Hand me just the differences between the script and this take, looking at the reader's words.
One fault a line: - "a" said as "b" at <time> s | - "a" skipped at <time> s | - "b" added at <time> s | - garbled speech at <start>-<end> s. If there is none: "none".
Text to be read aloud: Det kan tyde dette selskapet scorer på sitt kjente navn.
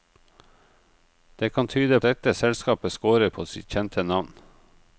none